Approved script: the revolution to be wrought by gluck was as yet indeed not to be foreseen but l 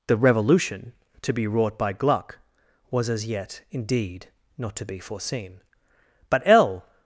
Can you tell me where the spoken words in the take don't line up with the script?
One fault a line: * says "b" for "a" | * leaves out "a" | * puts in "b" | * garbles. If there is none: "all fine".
all fine